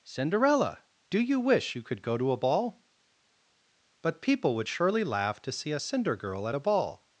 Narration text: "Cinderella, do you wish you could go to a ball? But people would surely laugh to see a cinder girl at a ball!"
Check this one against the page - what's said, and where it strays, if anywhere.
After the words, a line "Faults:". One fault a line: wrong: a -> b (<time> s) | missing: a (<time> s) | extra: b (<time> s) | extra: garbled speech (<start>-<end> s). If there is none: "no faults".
"Cinderella, do you wish you could go to a ball? But people would surely laugh to see a cinder girl at a ball!"
Faults:
no faults